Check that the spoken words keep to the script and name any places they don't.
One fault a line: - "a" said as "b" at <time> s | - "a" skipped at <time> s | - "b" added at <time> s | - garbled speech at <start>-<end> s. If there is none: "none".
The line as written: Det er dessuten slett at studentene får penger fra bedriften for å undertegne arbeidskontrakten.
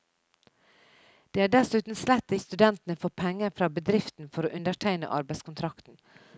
none